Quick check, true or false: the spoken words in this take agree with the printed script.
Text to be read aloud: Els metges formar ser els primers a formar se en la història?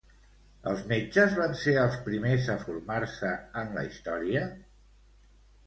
false